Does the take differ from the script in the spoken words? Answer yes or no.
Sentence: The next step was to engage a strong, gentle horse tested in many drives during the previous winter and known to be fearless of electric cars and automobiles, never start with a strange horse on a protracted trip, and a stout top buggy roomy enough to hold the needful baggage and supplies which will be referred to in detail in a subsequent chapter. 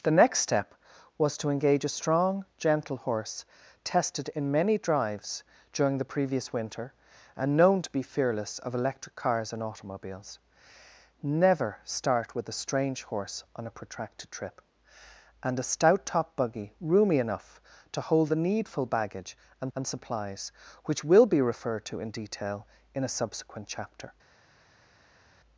yes